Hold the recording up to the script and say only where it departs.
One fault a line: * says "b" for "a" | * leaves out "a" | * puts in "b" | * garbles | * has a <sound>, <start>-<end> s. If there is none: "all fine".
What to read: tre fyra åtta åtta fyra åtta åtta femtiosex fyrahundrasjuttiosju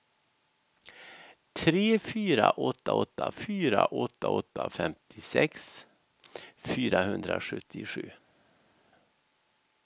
all fine